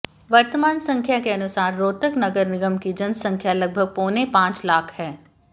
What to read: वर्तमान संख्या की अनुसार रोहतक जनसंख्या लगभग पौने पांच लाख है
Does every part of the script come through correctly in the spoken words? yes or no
no